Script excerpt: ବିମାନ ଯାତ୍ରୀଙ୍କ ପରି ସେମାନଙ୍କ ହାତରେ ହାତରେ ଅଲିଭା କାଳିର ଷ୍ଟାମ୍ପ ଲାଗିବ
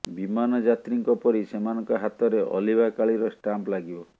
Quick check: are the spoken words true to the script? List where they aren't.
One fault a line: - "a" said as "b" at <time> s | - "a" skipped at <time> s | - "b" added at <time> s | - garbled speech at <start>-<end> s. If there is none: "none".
- "ହାତରେ" skipped at 2.4 s